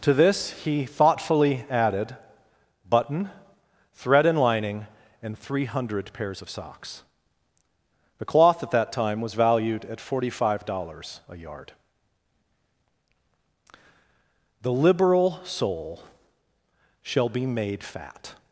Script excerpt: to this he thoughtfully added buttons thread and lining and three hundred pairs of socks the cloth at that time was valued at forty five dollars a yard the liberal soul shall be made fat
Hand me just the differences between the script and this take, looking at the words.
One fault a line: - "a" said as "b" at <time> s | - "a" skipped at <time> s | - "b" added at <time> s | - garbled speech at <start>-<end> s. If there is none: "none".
- "buttons" said as "button" at 2.9 s